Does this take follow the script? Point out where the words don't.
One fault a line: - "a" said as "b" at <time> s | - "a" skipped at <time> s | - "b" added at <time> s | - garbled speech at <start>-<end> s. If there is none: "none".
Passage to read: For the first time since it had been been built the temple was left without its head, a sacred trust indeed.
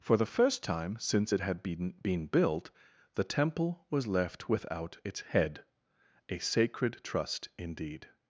none